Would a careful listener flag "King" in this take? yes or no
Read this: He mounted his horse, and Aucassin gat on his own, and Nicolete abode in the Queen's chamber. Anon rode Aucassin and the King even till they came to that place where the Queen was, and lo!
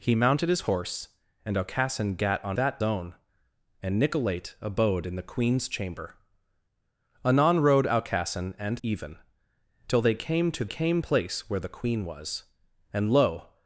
yes